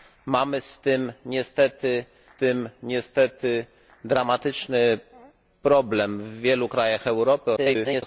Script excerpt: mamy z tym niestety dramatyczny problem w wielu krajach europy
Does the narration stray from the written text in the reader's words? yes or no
yes